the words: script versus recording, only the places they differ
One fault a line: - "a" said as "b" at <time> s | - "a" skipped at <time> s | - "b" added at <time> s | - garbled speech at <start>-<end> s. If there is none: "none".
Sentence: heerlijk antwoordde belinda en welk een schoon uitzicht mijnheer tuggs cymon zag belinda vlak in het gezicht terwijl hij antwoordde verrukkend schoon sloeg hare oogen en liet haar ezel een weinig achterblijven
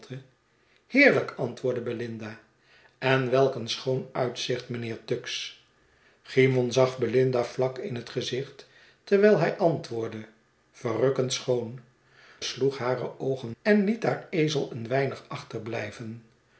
none